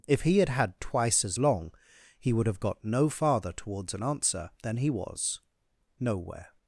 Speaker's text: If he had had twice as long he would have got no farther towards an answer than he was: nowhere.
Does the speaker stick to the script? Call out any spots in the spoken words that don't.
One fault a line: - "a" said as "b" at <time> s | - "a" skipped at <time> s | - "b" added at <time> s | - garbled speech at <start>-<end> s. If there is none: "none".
none